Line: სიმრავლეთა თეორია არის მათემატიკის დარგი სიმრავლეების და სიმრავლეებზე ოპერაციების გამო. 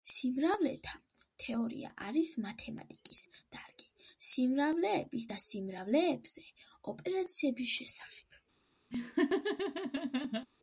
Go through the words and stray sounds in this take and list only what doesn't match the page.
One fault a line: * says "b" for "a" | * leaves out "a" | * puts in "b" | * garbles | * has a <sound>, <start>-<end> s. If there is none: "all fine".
* says "შესახებ" for "გამო"
* has a laugh, 8.9-10.5 s